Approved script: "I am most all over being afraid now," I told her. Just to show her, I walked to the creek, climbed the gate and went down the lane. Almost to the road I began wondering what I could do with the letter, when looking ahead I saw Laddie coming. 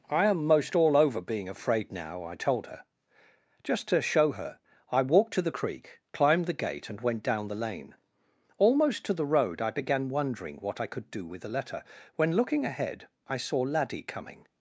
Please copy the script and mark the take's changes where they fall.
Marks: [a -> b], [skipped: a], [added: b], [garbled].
"I am most all over being afraid now," I told her. Just to show her, I walked to the creek, climbed the gate and went down the lane. Almost to the road I began wondering what I could do with the letter, when looking ahead I saw Laddie coming.